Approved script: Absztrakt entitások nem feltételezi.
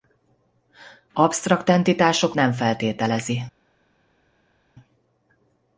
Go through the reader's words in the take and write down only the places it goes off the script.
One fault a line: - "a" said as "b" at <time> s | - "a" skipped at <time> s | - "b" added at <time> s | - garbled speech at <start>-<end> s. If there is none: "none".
none